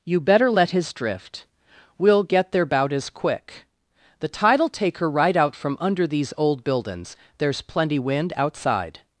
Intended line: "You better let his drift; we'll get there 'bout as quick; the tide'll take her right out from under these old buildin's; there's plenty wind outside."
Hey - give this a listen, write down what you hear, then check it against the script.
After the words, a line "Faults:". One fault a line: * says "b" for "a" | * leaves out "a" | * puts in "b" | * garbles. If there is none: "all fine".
"You better let his drift; we'll get there 'bout as quick; the tide'll take her right out from under these old buildin's; there's plenty wind outside."
Faults:
all fine